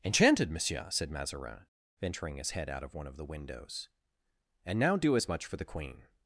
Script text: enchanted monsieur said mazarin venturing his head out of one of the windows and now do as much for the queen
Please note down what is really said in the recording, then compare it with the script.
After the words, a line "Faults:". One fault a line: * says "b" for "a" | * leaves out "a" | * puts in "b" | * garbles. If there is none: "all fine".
enchanted monsieur said mazarin venturing his head out of one of the windows and now do as much for the queen
Faults:
all fine